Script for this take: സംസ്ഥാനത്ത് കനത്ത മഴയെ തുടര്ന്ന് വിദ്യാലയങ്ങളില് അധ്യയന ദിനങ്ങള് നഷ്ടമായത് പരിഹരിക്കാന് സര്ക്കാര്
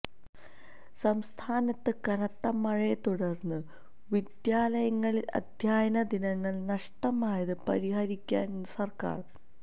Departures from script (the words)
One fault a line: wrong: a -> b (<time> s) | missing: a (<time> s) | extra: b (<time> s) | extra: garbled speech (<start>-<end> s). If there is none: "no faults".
no faults